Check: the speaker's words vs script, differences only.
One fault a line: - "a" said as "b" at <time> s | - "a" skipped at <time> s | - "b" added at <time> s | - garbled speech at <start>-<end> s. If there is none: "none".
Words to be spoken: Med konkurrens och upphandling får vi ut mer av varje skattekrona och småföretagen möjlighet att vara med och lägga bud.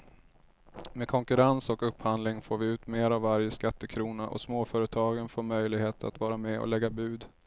- "får" added at 5.3 s